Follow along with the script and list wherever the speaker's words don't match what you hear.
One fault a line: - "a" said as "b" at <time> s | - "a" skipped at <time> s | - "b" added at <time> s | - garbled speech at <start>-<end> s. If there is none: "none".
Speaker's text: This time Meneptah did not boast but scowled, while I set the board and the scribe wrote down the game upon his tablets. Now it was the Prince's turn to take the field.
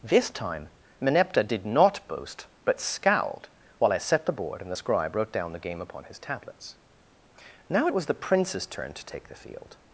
none